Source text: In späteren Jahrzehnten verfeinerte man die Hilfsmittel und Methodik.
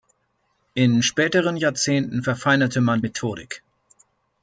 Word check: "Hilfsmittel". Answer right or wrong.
wrong